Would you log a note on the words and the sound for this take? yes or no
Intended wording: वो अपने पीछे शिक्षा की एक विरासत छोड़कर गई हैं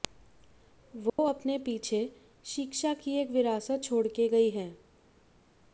yes